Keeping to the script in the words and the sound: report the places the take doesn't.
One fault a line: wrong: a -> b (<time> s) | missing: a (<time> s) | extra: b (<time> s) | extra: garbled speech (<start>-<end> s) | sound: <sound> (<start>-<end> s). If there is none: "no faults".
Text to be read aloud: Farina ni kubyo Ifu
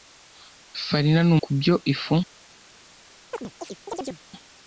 sound: chirp (3.3-4.2 s)